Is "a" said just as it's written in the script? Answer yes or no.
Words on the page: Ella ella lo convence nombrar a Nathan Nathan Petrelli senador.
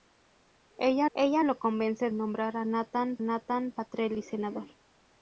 yes